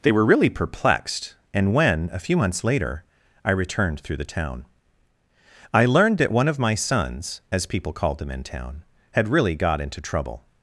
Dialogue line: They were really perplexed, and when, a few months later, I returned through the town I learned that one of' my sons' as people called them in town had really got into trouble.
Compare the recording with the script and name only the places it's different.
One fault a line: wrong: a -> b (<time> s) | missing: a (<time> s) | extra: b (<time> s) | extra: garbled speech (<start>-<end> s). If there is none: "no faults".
no faults